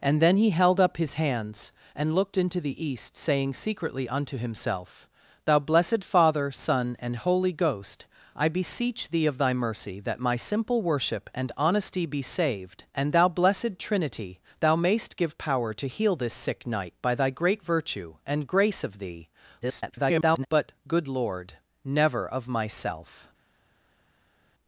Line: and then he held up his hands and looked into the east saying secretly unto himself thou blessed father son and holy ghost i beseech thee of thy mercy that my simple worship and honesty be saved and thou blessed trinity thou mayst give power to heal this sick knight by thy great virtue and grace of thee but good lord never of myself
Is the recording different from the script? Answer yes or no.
yes